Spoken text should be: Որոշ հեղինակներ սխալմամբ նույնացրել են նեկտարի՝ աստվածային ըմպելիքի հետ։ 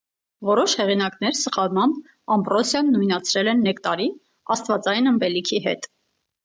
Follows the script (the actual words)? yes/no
no